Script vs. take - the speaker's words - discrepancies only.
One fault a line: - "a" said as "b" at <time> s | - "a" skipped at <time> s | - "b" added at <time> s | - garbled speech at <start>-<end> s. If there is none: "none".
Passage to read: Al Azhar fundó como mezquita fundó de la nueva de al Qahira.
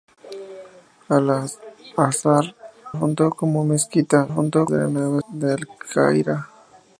none